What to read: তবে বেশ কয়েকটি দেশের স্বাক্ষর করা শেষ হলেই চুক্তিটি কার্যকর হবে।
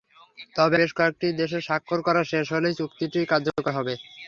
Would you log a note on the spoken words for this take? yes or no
no